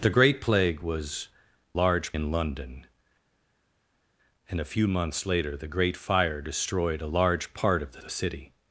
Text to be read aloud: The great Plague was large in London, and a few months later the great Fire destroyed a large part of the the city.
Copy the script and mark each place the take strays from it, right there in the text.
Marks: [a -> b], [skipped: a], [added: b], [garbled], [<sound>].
The great Plague was large in London, and a few months later the great Fire destroyed a large part of the the city.